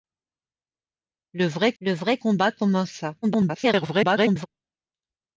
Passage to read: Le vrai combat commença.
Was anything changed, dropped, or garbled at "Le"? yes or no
no